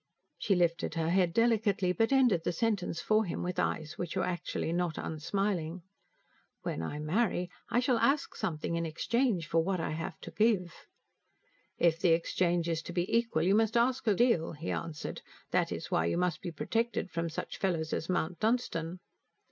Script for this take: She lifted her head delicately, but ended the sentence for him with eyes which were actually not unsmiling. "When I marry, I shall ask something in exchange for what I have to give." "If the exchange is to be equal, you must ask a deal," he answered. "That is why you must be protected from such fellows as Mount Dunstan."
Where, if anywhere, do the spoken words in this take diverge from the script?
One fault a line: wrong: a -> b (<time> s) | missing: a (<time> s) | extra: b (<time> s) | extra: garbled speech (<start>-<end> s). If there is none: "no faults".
no faults